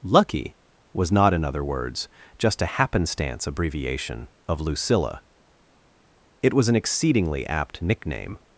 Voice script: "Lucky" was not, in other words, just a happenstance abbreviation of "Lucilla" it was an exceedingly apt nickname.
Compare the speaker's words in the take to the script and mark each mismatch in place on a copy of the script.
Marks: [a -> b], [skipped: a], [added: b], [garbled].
"Lucky" was not, in other words, just a happenstance abbreviation of "Lucilla" it was an exceedingly apt nickname.